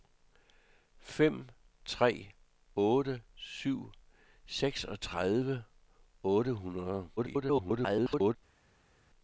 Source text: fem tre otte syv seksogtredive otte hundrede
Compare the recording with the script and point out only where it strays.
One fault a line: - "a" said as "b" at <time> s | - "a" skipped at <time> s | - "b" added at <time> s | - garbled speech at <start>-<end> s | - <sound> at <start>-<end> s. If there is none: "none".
- garbled speech at 7.2-8.4 s